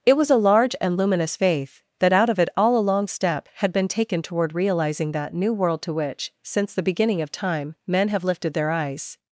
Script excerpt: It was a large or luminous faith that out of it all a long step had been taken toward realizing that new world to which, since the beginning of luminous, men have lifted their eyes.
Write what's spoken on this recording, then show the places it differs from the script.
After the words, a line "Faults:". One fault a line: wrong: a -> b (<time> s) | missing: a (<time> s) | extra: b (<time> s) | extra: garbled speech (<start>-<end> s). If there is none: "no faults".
It was a large and luminous faith that out of it all a long step had been taken toward realizing that new world to which, since the beginning of time, men have lifted their eyes.
Faults:
wrong: or -> and (0.8 s)
wrong: luminous -> time (7.3 s)